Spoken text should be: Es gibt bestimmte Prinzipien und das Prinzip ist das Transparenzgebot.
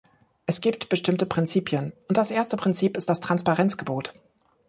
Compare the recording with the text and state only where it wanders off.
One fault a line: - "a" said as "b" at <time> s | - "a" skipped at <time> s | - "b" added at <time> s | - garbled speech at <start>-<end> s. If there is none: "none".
- "erste" added at 2.3 s